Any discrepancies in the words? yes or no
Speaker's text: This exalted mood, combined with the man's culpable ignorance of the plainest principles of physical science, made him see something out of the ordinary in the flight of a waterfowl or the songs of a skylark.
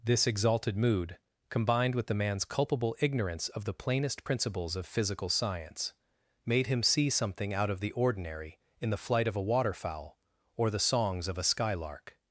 no